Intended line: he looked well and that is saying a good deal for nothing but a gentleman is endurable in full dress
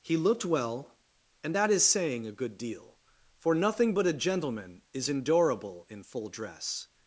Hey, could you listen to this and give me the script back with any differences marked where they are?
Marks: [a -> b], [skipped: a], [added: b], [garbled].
he looked well and that is saying a good deal for nothing but a gentleman is endurable in full dress